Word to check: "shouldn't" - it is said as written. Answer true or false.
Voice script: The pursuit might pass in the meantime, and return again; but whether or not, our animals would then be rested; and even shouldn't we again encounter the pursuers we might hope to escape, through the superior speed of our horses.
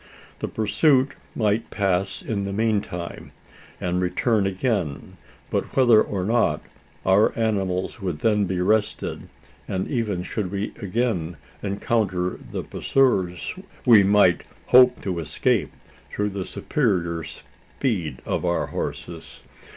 false